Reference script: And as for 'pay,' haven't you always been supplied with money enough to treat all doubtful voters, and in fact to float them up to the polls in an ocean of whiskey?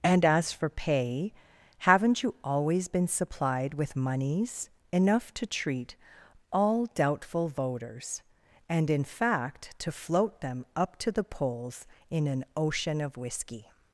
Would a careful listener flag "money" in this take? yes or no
yes